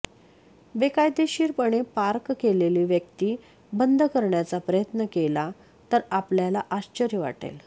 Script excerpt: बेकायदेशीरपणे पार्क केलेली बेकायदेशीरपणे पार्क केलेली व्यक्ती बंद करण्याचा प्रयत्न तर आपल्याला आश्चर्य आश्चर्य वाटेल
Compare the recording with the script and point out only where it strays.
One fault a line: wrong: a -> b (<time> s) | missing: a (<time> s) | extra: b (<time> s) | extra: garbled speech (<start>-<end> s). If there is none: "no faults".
missing: बेकायदेशीरपणे पार्क केलेली (2.8 s)
extra: केला (5.1 s)
missing: आश्चर्य (7.2 s)